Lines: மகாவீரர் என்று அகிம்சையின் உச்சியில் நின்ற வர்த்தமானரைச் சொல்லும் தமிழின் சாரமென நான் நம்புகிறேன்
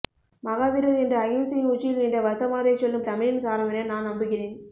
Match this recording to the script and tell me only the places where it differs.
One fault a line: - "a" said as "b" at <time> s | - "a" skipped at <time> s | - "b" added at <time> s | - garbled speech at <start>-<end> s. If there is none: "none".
none